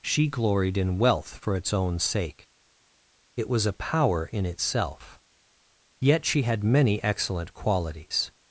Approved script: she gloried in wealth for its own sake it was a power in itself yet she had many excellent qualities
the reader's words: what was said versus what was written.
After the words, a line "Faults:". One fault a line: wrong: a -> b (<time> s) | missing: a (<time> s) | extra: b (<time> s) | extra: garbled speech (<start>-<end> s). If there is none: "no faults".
she gloried in wealth for its own sake it was a power in itself yet she had many excellent qualities
Faults:
no faults